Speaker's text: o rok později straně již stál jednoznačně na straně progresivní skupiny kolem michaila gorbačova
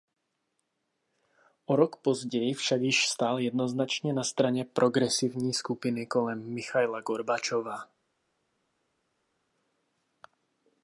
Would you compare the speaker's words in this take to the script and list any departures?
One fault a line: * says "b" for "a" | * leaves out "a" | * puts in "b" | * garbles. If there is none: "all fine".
* says "však" for "straně"